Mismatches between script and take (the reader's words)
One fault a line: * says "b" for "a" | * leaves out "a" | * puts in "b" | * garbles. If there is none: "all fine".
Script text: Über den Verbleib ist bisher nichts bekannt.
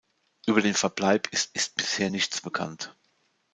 * puts in "ist"